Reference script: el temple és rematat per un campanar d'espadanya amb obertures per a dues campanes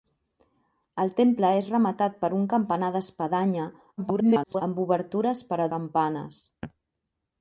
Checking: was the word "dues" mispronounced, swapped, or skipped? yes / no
yes